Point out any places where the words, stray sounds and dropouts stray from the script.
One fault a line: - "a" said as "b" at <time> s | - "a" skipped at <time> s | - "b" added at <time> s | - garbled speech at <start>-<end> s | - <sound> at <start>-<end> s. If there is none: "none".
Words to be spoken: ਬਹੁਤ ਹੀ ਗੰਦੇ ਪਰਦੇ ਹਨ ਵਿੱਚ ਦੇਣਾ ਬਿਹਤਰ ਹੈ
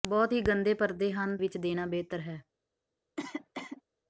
- cough at 3.2-3.8 s